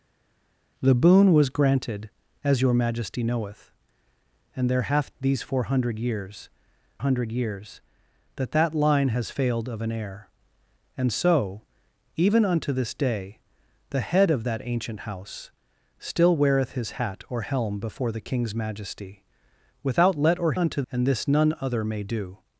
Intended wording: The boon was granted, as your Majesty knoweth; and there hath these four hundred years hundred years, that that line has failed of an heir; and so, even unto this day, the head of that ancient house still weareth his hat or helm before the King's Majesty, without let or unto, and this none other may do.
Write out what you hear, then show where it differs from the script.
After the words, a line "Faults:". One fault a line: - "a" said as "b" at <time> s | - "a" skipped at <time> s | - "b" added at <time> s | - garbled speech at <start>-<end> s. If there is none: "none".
The boon was granted, as your Majesty knoweth; and there hath these four hundred years hundred years, that that line has failed of an heir; and so, even unto this day, the head of that ancient house still weareth his hat or helm before the King's Majesty, without let or unto, and this none other may do.
Faults:
none